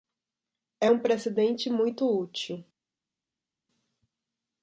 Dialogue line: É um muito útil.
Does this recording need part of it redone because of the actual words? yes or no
yes